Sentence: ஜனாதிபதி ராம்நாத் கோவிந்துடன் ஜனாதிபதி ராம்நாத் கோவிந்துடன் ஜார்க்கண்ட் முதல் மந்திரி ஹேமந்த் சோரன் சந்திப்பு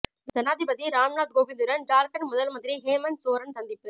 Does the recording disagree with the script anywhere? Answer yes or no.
yes